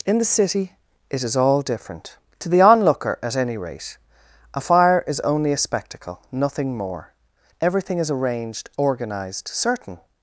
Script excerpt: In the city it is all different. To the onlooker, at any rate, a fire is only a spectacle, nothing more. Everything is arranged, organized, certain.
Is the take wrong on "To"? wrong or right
right